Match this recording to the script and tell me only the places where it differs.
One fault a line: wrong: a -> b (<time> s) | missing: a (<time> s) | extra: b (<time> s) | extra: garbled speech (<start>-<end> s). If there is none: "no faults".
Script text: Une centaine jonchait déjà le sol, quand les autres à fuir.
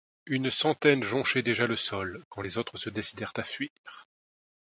extra: se décidèrent (2.8 s)